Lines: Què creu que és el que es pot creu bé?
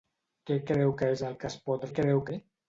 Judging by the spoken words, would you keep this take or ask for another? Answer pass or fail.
pass